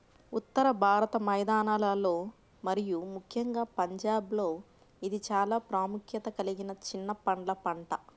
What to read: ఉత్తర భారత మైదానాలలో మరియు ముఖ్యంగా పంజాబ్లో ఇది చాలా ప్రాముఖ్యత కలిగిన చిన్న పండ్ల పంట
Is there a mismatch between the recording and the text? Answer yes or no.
no